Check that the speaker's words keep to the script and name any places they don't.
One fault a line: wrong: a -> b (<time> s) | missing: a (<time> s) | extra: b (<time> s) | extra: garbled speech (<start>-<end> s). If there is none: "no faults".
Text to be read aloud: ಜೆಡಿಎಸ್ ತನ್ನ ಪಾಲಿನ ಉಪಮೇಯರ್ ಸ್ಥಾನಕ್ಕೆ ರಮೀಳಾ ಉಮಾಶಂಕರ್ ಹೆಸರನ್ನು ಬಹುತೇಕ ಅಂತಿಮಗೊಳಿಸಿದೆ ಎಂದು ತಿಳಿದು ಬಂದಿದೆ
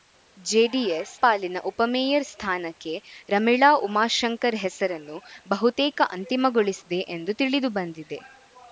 missing: ತನ್ನ (1.1 s)